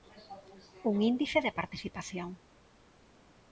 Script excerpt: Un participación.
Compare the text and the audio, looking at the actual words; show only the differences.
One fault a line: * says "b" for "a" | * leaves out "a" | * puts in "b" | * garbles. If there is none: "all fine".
* puts in "índice de"